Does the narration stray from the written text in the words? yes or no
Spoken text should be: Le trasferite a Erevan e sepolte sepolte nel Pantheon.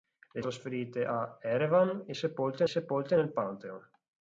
no